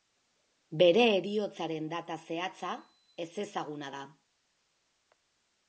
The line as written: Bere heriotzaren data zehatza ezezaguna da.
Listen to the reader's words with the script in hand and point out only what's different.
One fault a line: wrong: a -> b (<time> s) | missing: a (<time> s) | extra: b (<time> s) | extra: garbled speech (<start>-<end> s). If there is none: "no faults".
no faults